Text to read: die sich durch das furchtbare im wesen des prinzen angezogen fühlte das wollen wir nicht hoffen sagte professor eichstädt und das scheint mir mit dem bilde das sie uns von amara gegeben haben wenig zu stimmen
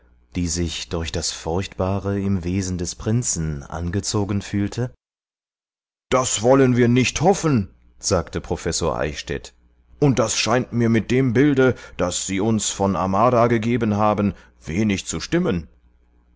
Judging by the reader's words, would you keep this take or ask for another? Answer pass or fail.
pass